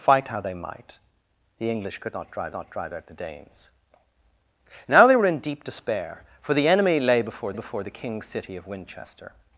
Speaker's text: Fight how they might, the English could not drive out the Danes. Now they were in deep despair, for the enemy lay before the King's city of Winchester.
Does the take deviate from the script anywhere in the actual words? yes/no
yes